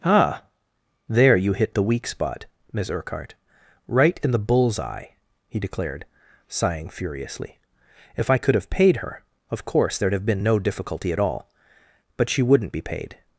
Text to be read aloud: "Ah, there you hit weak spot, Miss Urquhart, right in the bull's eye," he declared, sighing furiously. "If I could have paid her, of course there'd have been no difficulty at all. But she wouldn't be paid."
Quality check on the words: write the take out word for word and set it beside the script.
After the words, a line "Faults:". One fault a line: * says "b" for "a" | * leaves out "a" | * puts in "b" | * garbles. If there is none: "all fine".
"Ah, there you hit the weak spot, Miss Urquhart, right in the bull's eye," he declared, sighing furiously. "If I could have paid her, of course there'd have been no difficulty at all. But she wouldn't be paid."
Faults:
* puts in "the"